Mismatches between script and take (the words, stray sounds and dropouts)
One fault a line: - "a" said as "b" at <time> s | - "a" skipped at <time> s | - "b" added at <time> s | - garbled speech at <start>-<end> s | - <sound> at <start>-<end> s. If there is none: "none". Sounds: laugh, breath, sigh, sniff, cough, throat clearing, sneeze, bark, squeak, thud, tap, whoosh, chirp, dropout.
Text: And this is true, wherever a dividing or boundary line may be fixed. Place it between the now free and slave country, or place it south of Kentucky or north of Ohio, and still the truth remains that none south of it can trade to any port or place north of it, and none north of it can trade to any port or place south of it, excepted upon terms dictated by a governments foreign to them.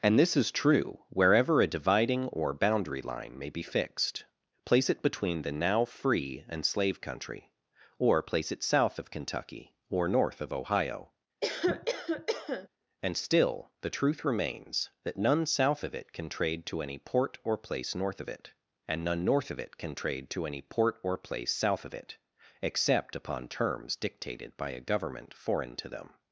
- cough at 11.4-12.7 s
- "excepted" said as "except" at 22.6 s
- "governments" said as "government" at 24.8 s